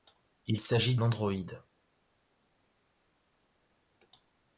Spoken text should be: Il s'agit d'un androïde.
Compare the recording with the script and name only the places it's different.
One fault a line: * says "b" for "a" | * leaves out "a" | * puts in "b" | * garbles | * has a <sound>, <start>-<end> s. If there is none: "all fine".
* leaves out "d'un"